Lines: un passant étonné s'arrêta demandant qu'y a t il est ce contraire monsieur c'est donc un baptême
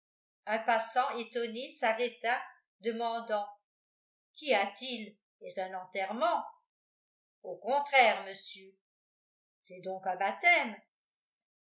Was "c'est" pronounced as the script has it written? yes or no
yes